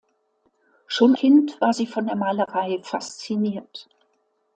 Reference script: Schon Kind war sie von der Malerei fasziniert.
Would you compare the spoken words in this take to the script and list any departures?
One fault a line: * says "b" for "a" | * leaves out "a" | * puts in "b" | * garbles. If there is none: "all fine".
all fine